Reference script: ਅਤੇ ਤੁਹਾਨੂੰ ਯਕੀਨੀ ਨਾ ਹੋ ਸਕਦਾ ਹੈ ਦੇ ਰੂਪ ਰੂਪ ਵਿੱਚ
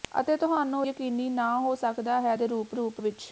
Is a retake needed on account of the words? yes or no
no